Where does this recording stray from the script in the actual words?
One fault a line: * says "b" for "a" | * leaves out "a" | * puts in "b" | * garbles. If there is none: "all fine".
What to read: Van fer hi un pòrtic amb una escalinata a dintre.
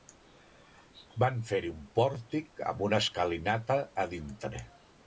all fine